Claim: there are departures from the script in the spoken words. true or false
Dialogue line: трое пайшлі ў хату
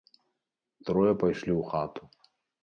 false